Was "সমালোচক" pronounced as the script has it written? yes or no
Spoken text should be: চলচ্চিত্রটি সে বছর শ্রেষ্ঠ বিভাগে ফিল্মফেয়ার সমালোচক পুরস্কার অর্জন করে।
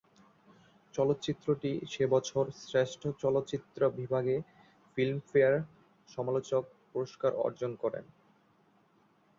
yes